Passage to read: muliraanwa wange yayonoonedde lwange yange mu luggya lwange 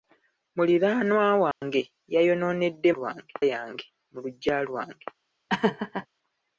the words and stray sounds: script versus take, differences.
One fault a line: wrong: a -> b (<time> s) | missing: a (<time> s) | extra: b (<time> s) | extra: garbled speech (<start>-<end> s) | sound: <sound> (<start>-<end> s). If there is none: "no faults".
sound: dropout (1.5-1.6 s)
sound: laugh (5.5-6.1 s)